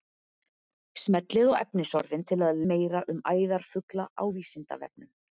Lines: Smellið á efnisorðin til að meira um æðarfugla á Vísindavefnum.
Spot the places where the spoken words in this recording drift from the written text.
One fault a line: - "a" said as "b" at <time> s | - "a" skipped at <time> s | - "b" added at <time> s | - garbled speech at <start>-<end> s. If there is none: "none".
none